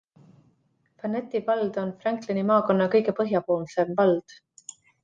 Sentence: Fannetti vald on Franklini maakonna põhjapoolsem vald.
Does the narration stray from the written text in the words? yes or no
yes